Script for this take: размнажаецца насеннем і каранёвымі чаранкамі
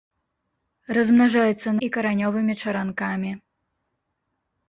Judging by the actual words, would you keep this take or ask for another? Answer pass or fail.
fail